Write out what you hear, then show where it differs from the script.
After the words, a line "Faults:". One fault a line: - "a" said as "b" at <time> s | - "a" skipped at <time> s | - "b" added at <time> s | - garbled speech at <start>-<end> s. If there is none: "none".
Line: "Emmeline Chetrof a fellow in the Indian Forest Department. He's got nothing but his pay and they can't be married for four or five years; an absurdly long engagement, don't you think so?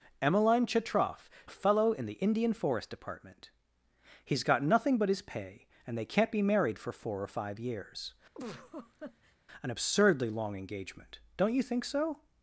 "Emmeline Chetrof a fellow in the Indian Forest Department. He's got nothing but his pay and they can't be married for four or five years; an absurdly long engagement, don't you think so?
Faults:
none